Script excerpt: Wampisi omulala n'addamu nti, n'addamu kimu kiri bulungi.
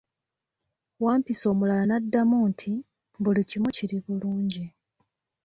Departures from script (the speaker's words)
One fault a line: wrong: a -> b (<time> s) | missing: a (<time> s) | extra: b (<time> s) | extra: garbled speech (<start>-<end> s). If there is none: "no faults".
wrong: n'addamu -> buli (3.2 s)